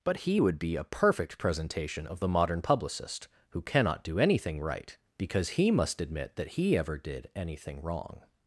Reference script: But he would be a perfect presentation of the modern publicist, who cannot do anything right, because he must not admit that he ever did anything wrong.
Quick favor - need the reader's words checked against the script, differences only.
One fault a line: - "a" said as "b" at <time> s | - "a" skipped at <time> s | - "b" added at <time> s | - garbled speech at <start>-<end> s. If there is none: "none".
- "not" skipped at 6.0 s